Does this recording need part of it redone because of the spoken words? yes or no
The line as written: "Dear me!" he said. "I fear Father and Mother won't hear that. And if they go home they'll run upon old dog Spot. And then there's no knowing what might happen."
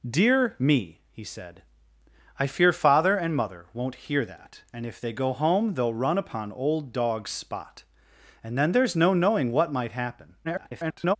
yes